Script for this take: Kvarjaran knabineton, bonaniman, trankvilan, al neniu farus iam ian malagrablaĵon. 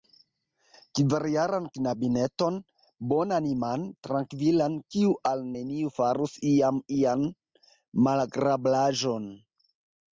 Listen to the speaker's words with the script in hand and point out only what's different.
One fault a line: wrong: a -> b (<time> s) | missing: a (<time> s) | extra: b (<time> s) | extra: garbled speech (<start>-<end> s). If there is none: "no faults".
extra: kiu (5.0 s)